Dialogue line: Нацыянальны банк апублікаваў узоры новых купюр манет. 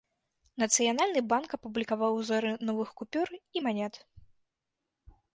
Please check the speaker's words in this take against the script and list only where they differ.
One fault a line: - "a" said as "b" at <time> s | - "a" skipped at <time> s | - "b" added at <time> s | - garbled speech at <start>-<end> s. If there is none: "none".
- "і" added at 3.4 s